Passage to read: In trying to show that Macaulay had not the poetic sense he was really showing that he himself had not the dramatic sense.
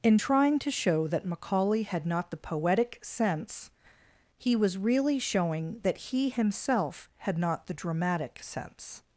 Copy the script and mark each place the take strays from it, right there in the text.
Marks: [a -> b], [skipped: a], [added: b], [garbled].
In trying to show that Macaulay had not the poetic sense he was really showing that he himself had not the dramatic sense.